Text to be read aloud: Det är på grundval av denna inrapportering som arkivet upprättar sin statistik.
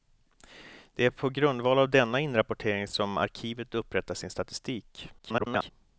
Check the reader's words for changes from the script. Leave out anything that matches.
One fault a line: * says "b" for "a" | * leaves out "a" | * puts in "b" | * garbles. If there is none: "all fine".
* garbles